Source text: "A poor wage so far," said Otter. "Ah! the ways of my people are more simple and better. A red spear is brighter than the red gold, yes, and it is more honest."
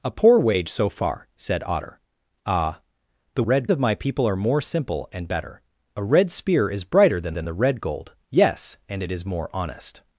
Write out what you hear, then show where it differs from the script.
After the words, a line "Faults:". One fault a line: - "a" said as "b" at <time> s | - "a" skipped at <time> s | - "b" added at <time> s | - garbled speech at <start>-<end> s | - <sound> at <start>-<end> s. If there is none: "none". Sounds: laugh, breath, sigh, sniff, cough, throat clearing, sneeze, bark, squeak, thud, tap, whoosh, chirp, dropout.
"A poor wage so far," said Otter. "Ah! the red of my people are more simple and better. A red spear is brighter than than the red gold, yes, and it is more honest."
Faults:
- "ways" said as "red" at 3.4 s
- "than" added at 7.3 s